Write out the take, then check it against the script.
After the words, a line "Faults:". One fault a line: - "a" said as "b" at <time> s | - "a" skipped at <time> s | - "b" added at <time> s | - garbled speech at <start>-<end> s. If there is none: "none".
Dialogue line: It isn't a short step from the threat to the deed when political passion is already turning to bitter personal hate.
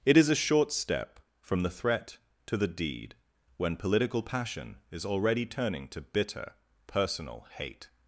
It is a short step from the threat to the deed when political passion is already turning to bitter personal hate.
Faults:
- "isn't" said as "is" at 0.2 s